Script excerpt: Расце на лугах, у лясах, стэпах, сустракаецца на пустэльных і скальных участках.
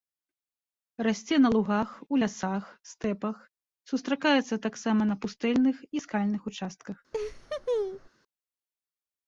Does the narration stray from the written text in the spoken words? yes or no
yes